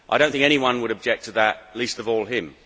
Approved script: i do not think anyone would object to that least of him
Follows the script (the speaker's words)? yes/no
no